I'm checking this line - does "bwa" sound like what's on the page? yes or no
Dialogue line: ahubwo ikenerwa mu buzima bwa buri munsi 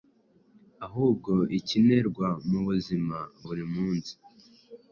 no